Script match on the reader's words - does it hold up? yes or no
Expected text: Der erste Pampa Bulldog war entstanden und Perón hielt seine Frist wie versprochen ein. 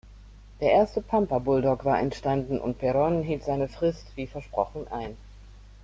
yes